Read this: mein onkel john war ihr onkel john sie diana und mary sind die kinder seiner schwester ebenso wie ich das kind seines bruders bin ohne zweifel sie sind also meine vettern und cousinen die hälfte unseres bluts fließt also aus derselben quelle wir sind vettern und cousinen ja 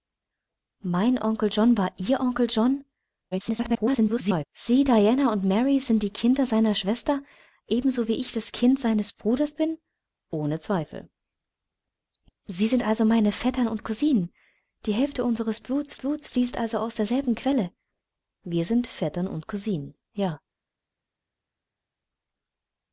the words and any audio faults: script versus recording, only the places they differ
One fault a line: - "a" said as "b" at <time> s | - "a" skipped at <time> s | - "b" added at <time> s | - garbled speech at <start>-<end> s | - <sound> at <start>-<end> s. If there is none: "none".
- garbled speech at 3.3-4.5 s
- "bluts" added at 15.9 s